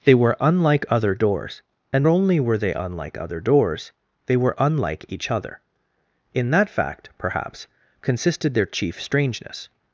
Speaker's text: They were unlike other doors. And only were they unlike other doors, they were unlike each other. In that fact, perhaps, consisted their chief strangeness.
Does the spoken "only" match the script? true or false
true